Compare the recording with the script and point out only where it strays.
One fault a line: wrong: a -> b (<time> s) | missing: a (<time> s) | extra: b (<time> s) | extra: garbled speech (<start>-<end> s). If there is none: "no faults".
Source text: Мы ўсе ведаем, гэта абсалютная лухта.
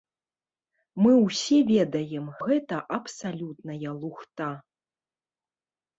no faults